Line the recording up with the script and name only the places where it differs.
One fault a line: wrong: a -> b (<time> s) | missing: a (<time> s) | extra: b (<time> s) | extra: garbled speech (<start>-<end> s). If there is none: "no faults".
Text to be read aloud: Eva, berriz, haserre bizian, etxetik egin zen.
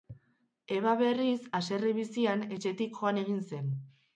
extra: joan (3.0 s)